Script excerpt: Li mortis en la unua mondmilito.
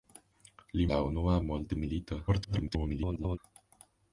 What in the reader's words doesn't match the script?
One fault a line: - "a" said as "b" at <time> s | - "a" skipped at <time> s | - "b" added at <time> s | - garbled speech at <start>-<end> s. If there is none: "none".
- "mortis en" skipped at 0.9 s
- garbled speech at 2.3-3.4 s